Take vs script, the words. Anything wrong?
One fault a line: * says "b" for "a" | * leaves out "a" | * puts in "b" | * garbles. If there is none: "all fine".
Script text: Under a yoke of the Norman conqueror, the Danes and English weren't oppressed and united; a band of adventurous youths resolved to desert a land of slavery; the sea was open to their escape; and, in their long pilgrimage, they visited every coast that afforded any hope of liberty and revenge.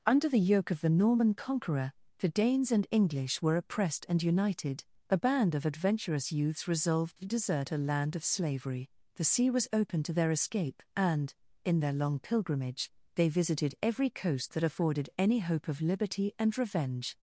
* says "the" for "a"
* says "were" for "weren't"